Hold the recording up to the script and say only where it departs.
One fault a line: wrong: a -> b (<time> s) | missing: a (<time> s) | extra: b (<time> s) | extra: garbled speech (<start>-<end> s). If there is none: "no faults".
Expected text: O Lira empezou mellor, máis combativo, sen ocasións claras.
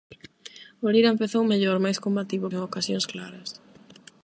no faults